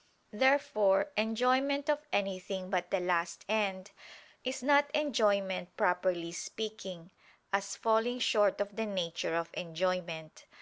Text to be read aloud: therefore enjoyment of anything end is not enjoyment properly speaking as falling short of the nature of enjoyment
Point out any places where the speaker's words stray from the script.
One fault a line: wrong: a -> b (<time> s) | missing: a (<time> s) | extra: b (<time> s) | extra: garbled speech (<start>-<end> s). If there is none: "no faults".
extra: but the last (2.7 s)